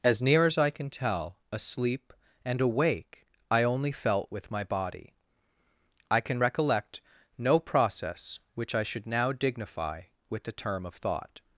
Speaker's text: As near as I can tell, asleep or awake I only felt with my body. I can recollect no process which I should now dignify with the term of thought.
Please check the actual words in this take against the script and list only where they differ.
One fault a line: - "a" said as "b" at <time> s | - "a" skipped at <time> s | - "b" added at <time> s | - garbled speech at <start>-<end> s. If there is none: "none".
- "or" said as "and" at 2.4 s